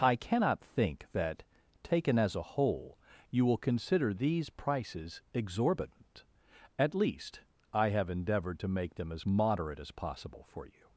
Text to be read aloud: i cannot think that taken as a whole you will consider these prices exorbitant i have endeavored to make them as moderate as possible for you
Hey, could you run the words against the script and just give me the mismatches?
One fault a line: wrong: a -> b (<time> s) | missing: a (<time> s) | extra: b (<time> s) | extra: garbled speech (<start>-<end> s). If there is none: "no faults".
extra: at least (6.8 s)